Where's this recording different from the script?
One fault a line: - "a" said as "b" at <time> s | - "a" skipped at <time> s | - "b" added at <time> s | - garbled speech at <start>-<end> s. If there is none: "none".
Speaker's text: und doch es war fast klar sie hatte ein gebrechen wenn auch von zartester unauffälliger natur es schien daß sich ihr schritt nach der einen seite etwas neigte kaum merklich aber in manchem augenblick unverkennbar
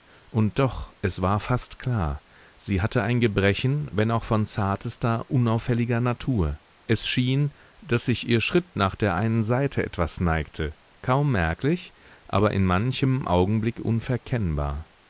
none